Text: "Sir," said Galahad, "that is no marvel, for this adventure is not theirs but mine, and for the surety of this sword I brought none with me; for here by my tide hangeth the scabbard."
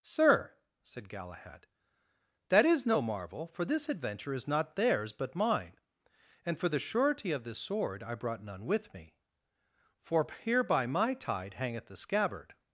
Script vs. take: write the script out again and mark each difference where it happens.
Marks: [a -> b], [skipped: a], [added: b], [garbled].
"Sir," said Galahad, "that is no marvel, for this adventure is not theirs but mine, and for the surety of this sword I brought none with me; for here by my tide hangeth the scabbard."